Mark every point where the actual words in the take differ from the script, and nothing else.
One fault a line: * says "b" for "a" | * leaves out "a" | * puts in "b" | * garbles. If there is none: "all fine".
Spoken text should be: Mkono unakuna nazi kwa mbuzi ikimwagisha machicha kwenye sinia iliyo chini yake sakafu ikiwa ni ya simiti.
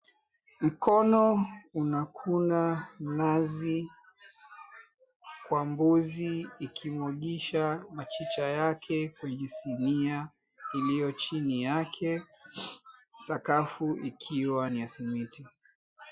* puts in "yake"